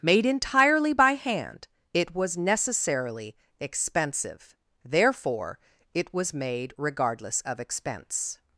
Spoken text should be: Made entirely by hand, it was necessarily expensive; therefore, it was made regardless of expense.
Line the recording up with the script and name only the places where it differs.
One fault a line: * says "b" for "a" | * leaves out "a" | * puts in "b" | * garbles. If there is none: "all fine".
all fine